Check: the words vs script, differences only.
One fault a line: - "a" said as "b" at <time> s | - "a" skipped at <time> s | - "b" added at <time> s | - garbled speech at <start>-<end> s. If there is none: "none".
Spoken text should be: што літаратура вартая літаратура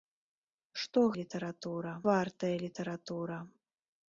none